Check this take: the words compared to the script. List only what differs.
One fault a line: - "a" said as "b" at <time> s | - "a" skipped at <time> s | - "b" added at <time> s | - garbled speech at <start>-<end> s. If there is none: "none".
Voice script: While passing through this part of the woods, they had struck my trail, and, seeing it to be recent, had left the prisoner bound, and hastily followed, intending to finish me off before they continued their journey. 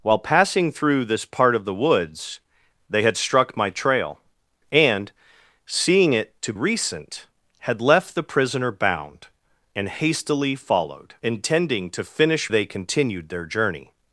- "be" skipped at 6.5 s
- "me off before" skipped at 12.5 s